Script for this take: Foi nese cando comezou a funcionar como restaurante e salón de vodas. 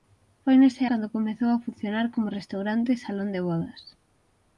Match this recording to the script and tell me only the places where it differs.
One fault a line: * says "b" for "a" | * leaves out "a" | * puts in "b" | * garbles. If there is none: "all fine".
all fine